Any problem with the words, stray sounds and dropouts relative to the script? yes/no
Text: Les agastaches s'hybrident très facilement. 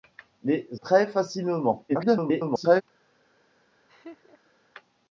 yes